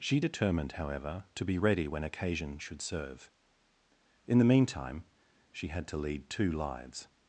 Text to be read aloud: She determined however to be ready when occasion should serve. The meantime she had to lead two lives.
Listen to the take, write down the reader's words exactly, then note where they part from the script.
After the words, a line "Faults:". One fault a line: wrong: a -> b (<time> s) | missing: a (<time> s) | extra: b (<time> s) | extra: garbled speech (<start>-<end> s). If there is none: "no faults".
She determined however to be ready when occasion should serve. In the meantime she had to lead two lives.
Faults:
extra: In (4.3 s)